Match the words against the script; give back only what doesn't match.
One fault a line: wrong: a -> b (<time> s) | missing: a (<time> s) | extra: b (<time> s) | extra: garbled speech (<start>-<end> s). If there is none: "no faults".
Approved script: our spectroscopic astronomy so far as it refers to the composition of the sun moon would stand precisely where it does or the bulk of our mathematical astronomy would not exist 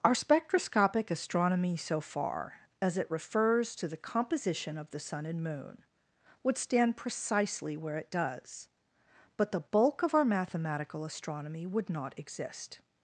extra: and (5.2 s)
wrong: or -> but (9.3 s)